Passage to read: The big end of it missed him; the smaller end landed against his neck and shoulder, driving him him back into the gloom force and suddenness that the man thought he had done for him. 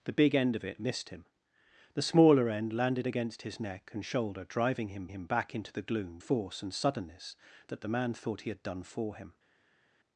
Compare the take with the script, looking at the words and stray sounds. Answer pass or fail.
pass